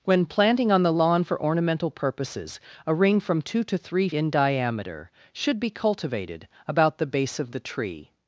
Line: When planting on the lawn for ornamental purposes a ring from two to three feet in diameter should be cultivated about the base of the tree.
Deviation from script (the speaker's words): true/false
true